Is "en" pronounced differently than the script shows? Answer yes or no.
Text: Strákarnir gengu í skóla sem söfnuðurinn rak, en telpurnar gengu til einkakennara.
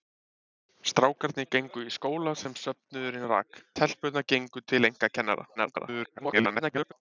yes